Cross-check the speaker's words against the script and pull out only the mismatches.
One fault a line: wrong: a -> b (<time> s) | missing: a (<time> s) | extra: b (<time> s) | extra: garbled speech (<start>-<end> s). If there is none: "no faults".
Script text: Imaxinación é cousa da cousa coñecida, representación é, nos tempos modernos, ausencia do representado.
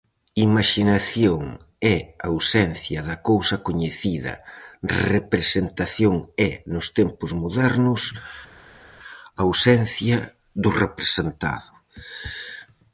wrong: cousa -> ausencia (2.3 s)